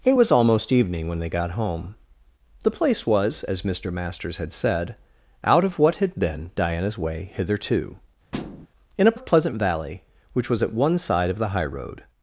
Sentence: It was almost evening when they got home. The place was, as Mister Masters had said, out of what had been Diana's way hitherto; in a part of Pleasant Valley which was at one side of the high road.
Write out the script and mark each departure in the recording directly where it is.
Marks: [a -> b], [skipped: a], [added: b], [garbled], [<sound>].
It was almost evening when they got home. The place was, as Mister Masters had said, out of what had been Diana's way hitherto; [thud] in a [skipped: part] of Pleasant Valley which was at one side of the high road.